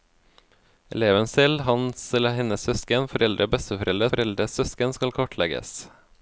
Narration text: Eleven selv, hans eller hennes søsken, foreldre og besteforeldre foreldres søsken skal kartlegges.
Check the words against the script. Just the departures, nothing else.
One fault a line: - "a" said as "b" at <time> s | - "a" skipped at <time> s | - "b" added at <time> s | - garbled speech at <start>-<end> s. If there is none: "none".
none